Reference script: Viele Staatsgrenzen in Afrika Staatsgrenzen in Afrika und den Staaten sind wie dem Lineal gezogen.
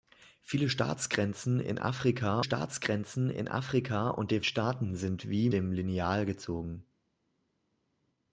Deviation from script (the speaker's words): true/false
false